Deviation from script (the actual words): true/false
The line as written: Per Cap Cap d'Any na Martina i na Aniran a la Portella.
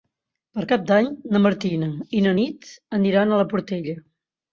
true